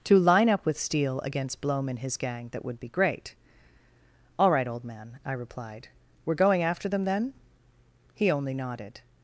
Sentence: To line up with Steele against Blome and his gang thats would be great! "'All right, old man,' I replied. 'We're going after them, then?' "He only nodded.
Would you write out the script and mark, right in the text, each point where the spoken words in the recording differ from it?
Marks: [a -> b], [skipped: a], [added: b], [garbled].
To line up with Steele against Blome and his gang [thats -> that] would be great! "'All right, old man,' I replied. 'We're going after them, then?' "He only nodded.